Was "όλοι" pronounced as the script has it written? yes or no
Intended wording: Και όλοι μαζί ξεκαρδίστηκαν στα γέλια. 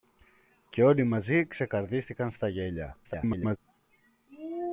yes